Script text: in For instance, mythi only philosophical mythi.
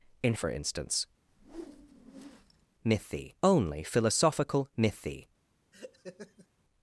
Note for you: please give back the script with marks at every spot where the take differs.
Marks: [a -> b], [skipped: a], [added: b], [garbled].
in For instance, mythi only philosophical mythi.